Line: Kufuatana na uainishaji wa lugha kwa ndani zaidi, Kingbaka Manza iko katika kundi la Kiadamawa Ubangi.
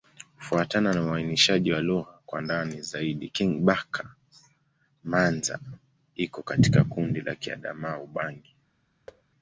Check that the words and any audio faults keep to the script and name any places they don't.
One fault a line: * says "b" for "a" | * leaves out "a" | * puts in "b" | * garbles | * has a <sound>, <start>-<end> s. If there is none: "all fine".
* has a thud, 9.1-9.2 s